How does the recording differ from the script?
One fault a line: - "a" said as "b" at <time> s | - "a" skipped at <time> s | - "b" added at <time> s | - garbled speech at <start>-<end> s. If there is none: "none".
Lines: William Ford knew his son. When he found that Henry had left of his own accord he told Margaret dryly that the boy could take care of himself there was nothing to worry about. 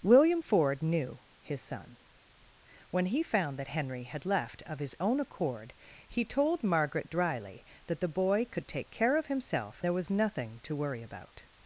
none